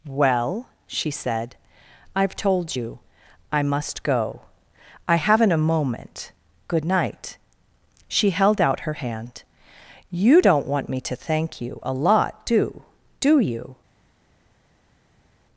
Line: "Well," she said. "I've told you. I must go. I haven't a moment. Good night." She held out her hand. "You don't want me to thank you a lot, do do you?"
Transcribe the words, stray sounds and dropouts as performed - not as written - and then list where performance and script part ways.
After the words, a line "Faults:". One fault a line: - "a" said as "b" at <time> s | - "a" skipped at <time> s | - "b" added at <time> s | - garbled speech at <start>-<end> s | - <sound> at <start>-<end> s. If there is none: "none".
"Well," she said. "I've told you. I must go. I haven't a moment. Good night." She held out her hand. "You don't want me to thank you a lot, do do you?"
Faults:
none